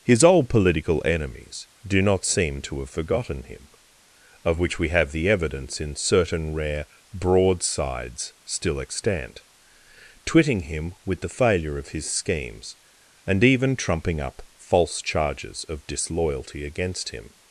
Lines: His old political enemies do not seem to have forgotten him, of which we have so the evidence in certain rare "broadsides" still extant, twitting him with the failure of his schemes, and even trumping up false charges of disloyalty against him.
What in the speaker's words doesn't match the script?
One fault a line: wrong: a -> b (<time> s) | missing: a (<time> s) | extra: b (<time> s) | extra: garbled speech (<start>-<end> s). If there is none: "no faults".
missing: so (5.1 s)